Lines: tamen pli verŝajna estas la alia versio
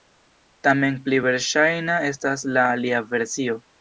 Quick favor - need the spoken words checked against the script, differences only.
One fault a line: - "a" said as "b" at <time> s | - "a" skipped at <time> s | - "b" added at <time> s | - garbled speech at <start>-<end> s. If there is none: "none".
none